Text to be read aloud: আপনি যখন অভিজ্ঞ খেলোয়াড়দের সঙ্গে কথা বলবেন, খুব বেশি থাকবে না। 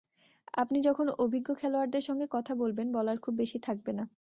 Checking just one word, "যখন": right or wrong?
right